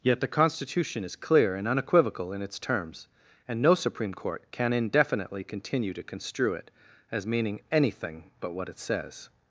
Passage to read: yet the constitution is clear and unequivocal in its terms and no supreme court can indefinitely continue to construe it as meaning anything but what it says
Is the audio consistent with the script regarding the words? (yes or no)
yes